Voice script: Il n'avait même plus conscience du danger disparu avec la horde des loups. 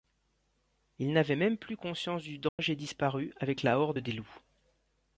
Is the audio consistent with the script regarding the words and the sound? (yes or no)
no